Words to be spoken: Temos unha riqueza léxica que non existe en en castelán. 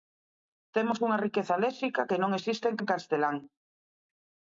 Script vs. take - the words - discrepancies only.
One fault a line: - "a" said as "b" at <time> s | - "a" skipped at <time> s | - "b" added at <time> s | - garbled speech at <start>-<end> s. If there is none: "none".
none